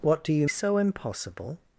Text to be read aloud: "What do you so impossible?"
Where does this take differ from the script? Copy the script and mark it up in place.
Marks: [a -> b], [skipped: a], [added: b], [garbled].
"What do you so impossible?"